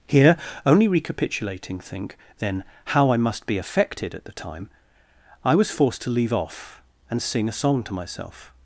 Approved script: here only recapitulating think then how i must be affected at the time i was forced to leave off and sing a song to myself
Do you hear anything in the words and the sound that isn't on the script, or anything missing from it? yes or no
no